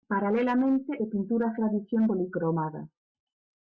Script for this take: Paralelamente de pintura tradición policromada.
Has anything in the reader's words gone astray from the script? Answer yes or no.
no